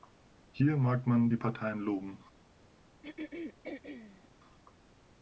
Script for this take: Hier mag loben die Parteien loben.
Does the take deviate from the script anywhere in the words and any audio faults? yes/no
yes